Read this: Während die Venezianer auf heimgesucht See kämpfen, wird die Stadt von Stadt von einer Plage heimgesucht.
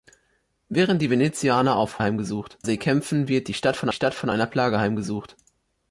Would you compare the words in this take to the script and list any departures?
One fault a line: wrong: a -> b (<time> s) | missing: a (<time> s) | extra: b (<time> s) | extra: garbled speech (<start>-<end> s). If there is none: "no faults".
no faults